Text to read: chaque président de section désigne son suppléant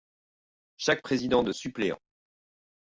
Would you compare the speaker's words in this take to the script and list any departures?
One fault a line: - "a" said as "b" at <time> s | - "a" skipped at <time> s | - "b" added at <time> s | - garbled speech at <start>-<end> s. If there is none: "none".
- "section désigne son" skipped at 1.5 s